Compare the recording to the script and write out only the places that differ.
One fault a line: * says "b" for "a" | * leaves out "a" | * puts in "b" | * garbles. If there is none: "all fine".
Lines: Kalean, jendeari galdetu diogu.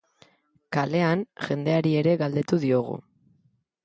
* puts in "ere"